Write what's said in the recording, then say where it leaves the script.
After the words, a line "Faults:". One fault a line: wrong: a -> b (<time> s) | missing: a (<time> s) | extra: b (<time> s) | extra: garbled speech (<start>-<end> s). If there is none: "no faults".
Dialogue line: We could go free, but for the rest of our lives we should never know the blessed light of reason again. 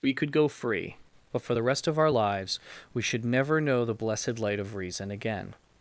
We could go free, but for the rest of our lives we should never know the blessed light of reason again.
Faults:
no faults